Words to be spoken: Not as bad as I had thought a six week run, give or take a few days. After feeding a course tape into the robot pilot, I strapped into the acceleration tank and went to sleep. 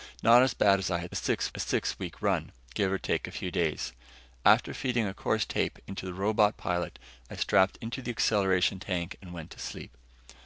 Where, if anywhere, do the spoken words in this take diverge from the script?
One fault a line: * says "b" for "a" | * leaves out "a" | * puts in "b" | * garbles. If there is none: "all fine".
* says "six" for "thought"